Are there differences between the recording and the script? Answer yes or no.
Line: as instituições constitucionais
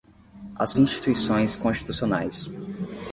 no